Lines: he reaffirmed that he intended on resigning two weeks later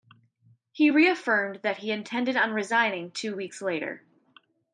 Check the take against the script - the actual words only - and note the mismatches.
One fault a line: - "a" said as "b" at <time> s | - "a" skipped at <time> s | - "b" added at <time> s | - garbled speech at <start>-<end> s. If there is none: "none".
none